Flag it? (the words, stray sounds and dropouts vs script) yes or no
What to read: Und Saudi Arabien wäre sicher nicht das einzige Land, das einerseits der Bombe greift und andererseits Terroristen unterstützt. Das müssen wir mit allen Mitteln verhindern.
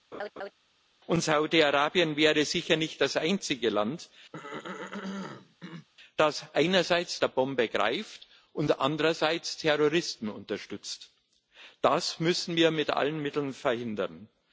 yes